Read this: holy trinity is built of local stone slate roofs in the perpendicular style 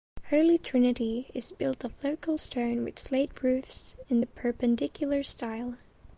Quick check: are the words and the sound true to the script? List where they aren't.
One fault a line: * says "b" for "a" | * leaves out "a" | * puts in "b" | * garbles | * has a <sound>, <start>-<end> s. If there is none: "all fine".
* puts in "with"